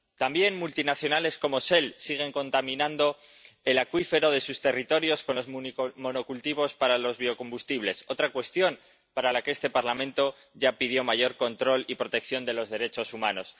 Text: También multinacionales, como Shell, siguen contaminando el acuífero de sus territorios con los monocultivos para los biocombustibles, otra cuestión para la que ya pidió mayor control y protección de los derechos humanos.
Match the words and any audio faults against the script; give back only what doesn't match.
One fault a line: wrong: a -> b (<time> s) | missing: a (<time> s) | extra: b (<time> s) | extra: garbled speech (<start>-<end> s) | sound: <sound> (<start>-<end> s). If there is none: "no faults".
extra: este Parlamento (9.5 s)